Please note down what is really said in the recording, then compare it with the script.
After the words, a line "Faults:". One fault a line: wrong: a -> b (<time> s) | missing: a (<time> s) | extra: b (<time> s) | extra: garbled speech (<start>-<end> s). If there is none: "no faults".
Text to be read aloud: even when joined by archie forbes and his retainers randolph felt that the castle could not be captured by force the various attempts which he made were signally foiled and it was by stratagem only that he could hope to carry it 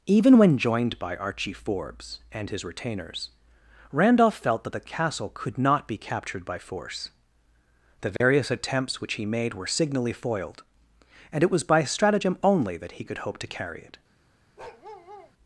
even when joined by archie forbes and his retainers randolph felt that the castle could not be captured by force the various attempts which he made were signally foiled and it was by stratagem only that he could hope to carry it
Faults:
no faults